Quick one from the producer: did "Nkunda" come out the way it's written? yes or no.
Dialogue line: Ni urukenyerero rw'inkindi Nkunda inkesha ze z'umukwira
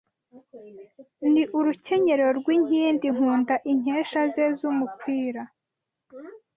yes